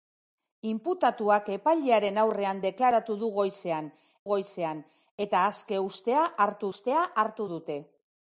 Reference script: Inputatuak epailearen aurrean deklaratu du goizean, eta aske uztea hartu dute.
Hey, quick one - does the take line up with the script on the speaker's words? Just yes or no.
no